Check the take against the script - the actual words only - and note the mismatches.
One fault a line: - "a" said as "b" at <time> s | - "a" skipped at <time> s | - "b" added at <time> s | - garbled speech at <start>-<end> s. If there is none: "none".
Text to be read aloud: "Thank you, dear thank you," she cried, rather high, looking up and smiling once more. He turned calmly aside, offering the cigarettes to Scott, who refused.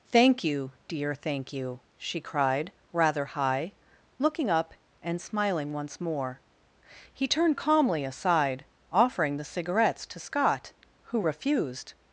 none